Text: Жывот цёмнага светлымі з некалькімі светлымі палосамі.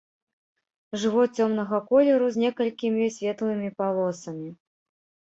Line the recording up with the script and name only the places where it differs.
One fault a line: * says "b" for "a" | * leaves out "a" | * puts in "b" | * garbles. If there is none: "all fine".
* says "колеру" for "светлымі"